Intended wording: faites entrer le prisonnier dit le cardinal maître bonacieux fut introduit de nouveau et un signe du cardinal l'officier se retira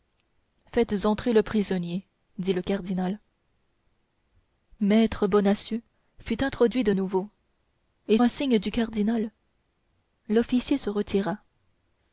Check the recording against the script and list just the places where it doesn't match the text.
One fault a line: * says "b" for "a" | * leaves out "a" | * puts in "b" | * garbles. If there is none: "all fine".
all fine